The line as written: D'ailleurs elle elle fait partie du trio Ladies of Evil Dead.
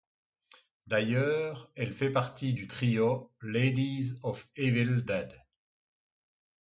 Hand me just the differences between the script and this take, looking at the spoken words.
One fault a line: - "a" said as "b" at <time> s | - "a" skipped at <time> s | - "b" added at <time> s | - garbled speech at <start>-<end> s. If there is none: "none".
- "elle" skipped at 1.9 s